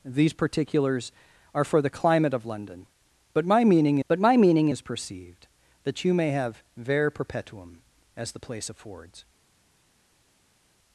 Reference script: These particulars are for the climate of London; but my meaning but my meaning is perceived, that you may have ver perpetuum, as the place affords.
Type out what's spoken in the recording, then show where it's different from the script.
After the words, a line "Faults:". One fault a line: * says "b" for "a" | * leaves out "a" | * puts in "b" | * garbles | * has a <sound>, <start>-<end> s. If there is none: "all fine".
These particulars are for the climate of London; but my meaning but my meaning is perceived, that you may have ver perpetuum, as the place affords.
Faults:
all fine